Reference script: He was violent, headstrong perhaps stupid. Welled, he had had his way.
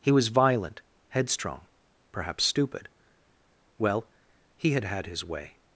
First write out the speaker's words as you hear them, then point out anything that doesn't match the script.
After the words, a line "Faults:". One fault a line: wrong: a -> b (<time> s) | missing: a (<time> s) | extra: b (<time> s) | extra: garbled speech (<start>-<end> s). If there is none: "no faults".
He was violent, headstrong perhaps stupid. Well, he had had his way.
Faults:
wrong: Welled -> Well (3.8 s)